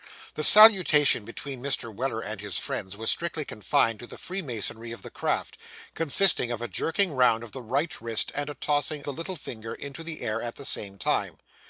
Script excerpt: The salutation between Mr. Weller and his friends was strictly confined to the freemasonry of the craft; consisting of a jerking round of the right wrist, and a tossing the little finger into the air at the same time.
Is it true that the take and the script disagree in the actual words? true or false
false